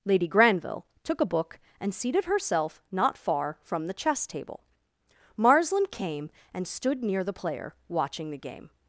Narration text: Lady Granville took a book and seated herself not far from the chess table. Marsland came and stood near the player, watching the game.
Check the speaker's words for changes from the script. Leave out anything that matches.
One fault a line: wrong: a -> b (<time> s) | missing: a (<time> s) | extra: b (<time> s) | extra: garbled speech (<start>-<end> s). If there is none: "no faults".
no faults